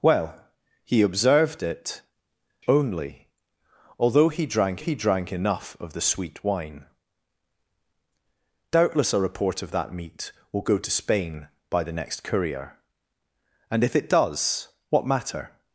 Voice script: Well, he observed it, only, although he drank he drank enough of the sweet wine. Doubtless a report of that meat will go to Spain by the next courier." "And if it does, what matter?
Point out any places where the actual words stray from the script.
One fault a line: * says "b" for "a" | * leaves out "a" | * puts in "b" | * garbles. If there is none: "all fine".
all fine